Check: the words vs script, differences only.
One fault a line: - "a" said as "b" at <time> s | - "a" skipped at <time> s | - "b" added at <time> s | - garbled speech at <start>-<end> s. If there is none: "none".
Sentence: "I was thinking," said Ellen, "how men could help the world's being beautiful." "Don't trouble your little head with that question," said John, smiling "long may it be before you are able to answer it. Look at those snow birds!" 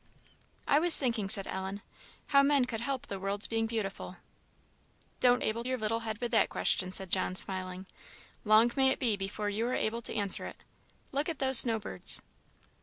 - "trouble" said as "able" at 5.4 s